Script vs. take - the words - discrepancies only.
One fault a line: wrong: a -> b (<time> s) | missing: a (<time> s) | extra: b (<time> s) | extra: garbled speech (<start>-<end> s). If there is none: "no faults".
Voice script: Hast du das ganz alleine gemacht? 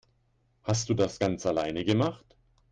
no faults